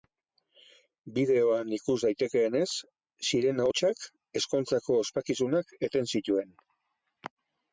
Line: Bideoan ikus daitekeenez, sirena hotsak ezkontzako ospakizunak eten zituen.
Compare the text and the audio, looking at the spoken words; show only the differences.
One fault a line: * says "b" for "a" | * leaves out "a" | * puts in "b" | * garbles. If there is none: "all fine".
all fine